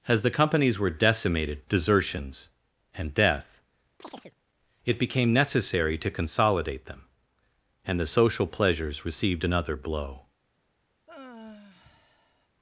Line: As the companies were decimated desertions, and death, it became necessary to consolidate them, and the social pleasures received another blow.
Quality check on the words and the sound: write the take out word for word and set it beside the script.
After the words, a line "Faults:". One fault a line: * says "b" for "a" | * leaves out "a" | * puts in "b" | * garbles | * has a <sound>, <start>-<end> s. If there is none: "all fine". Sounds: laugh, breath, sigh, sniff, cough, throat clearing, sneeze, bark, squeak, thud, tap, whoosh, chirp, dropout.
As the companies were decimated desertions, and death, it became necessary to consolidate them, and the social pleasures received another blow.
Faults:
* has a chirp, 4.0-4.4 s
* has a sigh, 11.1-12.5 s